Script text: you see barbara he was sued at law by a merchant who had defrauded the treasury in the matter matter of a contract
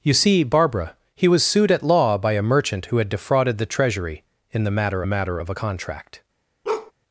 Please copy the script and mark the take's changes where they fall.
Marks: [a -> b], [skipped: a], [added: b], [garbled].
you see barbara he was sued at law by a merchant who had defrauded the treasury in the matter matter of a contract